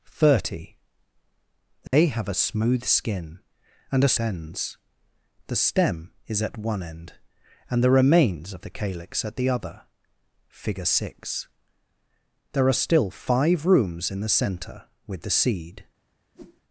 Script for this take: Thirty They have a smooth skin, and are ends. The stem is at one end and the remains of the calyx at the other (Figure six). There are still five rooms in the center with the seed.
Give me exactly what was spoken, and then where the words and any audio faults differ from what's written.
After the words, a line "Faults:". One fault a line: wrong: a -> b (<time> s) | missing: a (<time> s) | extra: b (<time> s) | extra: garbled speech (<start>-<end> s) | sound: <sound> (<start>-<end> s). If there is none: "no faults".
Thirty They have a smooth skin, and are ends. The stem is at one end and the remains of the calyx at the other (Figure six). There are still five rooms in the center with the seed.
Faults:
sound: dropout (1.9-1.9 s)
sound: whoosh (16.3-16.6 s)